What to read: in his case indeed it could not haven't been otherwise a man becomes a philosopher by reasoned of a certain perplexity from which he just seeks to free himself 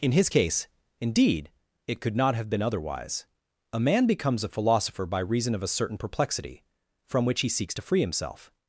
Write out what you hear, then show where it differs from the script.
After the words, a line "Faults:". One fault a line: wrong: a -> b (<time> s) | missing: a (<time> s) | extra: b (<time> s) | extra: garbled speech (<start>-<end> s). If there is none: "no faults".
in his case indeed it could not have been otherwise a man becomes a philosopher by reason of a certain perplexity from which he seeks to free himself
Faults:
wrong: haven't -> have (2.4 s)
wrong: reasoned -> reason (5.2 s)
missing: just (7.5 s)